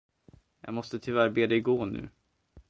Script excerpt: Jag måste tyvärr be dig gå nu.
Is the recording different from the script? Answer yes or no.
no